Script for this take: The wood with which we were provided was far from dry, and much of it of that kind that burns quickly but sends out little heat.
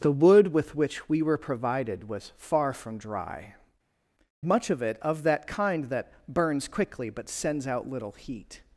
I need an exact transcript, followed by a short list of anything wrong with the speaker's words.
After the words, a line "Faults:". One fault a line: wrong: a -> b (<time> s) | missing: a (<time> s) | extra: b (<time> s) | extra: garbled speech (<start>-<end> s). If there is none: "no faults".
The wood with which we were provided was far from dry, much of it of that kind that burns quickly but sends out little heat.
Faults:
missing: and (3.5 s)